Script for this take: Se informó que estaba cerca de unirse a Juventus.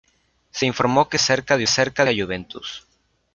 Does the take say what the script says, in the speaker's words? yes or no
no